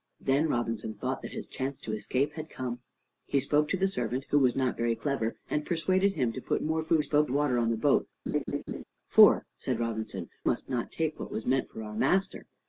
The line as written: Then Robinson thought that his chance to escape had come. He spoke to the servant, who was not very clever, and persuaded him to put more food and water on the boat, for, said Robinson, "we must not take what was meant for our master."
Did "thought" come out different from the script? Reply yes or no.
no